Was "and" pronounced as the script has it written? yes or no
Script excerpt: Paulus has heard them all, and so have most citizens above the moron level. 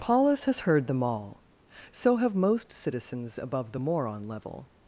no